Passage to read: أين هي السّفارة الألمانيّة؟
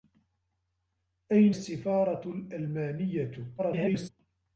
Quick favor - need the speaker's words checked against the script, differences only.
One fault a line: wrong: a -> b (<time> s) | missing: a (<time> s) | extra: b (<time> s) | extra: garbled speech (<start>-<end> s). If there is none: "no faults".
missing: هي (1.6 s)
extra: garbled speech (3.6-4.1 s)